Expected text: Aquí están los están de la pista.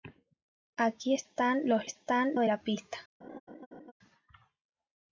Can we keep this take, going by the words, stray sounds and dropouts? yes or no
no